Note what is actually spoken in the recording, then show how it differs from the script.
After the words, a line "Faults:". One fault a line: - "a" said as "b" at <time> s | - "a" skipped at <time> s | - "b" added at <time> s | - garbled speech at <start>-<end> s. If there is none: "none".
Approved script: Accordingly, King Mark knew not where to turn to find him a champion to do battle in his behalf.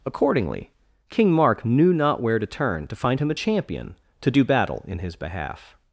Accordingly, King Mark knew not where to turn to find him a champion to do battle in his behalf.
Faults:
none